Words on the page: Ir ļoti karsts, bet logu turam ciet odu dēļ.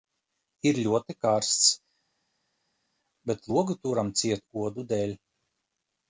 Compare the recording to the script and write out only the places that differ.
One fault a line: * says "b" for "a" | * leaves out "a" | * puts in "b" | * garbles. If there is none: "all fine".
all fine